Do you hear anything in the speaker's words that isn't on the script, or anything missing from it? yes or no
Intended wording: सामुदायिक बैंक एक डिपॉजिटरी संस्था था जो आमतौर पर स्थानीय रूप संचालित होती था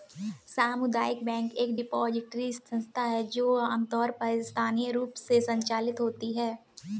yes